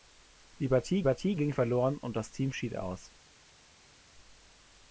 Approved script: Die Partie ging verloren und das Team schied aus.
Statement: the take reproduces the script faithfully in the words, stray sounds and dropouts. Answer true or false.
false